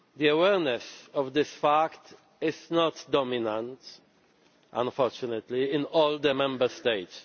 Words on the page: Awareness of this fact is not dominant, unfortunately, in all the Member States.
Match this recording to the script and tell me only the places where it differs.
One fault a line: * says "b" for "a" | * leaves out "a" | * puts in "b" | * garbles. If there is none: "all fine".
all fine